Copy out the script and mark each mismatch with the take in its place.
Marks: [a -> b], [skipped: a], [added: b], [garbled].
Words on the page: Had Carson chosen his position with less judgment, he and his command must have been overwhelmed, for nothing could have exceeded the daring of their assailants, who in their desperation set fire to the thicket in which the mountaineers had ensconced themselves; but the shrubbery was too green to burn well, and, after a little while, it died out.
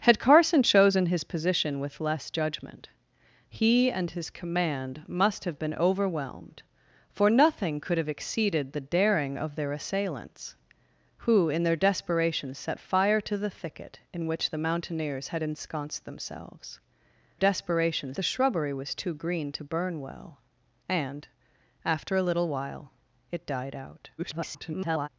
Had Carson chosen his position with less judgment, he and his command must have been overwhelmed, for nothing could have exceeded the daring of their assailants, who in their desperation set fire to the thicket in which the mountaineers had ensconced themselves; [but -> desperation] the shrubbery was too green to burn well, and, after a little while, it died out. [garbled]